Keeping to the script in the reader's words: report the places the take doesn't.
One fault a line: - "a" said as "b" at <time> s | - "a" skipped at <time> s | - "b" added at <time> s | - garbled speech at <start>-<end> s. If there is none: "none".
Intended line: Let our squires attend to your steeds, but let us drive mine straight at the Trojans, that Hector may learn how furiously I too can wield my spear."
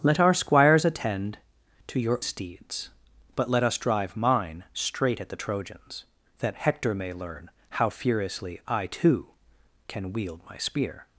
none